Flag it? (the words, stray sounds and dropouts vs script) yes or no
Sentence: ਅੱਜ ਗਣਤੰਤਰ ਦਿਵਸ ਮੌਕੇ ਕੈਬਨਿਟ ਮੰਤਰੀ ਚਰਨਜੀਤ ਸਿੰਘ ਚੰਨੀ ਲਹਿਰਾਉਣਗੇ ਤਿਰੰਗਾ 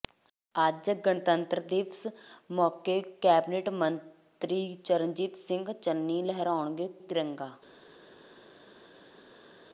no